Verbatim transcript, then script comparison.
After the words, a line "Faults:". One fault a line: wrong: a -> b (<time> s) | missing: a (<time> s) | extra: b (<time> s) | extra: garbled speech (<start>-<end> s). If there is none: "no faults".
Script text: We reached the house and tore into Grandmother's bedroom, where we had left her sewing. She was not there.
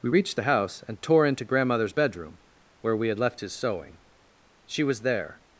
We reached the house and tore into Grandmother's bedroom, where we had left his sewing. She was there.
Faults:
wrong: her -> his (3.4 s)
missing: not (5.0 s)